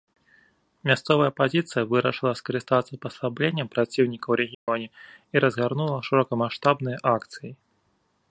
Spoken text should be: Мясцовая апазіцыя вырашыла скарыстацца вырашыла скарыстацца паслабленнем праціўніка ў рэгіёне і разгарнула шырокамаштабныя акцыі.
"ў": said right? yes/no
yes